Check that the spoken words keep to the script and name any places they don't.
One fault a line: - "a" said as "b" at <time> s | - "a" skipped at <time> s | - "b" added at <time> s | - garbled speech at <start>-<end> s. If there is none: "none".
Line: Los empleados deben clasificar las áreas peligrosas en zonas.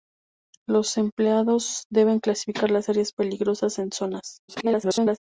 - garbled speech at 4.5-5.2 s